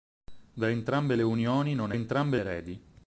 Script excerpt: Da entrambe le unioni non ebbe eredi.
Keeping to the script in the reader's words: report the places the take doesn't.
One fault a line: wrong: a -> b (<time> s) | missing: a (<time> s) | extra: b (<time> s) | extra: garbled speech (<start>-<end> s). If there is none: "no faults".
wrong: ebbe -> entrambe (1.9 s)